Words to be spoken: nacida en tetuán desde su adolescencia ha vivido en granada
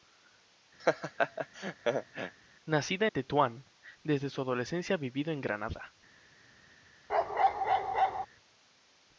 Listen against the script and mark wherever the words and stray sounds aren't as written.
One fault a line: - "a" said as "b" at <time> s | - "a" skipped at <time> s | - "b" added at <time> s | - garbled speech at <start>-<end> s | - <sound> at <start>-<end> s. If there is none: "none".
- laugh at 0.8-2.3 s
- "en" skipped at 3.1 s
- bark at 7.1-8.3 s